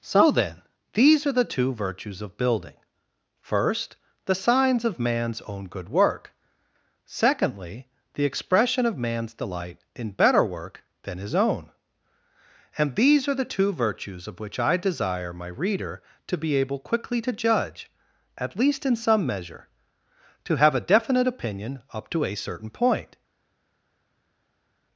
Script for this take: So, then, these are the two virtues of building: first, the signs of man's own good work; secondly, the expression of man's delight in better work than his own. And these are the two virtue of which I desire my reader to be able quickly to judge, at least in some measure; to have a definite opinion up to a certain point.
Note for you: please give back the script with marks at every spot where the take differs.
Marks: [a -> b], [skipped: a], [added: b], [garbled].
So, then, these are the two virtues of building: first, the signs of man's own good work; secondly, the expression of man's delight in better work than his own. And these are the two [virtue -> virtues] of which I desire my reader to be able quickly to judge, at least in some measure; to have a definite opinion up to a certain point.